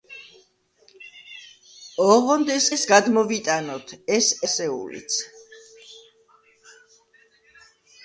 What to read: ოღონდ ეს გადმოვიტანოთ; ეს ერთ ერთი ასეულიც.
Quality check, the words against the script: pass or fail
fail